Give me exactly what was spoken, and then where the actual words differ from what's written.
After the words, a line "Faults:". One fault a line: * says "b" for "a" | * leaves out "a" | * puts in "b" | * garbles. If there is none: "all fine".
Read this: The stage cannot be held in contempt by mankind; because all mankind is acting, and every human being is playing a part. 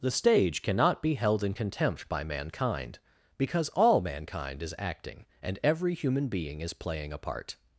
The stage cannot be held in contempt by mankind; because all mankind is acting, and every human being is playing a part.
Faults:
all fine